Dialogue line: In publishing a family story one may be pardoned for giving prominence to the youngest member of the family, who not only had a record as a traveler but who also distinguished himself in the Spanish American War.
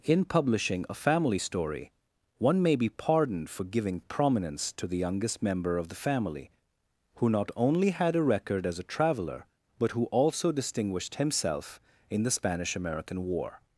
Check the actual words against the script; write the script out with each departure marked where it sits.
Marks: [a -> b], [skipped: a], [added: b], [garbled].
In publishing a family story one may be pardoned for giving prominence to the youngest member of the family, who not only had a record as a traveler but who also distinguished himself in the Spanish American War.